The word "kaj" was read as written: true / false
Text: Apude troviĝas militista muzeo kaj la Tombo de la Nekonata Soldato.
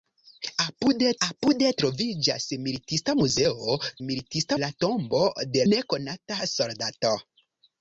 false